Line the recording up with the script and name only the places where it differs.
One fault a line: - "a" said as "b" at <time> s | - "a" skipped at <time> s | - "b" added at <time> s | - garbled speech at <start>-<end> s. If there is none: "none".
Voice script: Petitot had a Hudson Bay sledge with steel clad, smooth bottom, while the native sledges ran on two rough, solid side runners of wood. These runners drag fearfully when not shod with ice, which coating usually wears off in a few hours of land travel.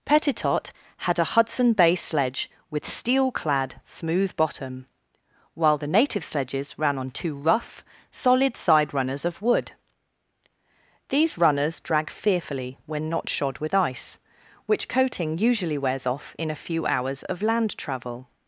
none